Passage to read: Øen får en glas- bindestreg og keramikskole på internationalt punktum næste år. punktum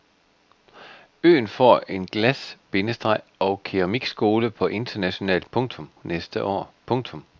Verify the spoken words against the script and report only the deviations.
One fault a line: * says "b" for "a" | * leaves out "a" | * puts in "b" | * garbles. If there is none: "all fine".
all fine